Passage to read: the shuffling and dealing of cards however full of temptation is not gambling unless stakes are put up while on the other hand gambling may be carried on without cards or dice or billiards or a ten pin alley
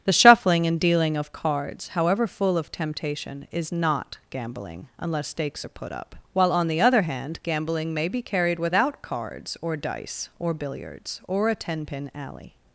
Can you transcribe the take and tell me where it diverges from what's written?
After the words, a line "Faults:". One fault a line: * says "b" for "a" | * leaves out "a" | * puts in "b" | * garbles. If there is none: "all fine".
the shuffling and dealing of cards however full of temptation is not gambling unless stakes are put up while on the other hand gambling may be carried without cards or dice or billiards or a ten pin alley
Faults:
* leaves out "on"